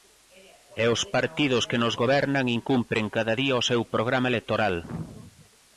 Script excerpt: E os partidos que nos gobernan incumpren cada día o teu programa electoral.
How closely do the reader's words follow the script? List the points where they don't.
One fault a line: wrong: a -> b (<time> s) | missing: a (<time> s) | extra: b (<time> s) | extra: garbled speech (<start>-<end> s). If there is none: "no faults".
wrong: teu -> seu (3.7 s)